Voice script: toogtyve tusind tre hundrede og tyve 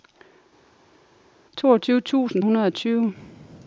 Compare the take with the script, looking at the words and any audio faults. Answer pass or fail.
fail